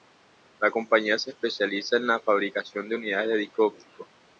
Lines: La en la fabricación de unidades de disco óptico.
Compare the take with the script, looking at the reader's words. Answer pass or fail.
fail